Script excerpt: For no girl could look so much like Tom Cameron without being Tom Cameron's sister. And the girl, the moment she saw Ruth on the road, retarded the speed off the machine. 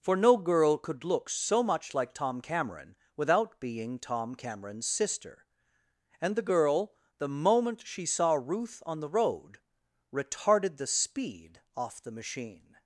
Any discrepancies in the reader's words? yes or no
no